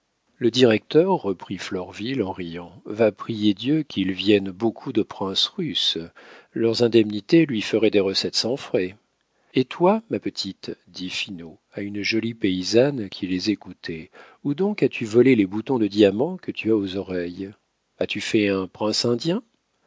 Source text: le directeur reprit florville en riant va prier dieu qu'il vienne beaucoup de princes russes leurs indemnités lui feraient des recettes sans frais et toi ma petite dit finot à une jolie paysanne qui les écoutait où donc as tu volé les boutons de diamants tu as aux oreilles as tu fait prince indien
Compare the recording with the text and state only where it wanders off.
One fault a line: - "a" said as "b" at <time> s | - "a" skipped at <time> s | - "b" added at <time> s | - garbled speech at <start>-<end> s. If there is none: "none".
- "que" added at 16.4 s
- "un" added at 18.5 s